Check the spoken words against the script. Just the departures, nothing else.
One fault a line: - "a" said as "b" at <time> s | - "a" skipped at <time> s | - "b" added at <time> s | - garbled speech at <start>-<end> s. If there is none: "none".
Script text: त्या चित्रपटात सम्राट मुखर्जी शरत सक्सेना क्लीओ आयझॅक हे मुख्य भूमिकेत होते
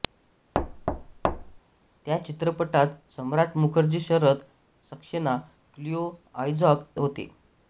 - "हे मुख्य भूमिकेत" skipped at 6.9 s